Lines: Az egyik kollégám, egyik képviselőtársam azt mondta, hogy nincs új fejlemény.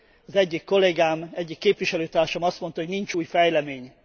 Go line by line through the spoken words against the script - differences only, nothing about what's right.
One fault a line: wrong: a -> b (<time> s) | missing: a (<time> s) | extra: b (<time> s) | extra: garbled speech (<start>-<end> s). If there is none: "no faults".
no faults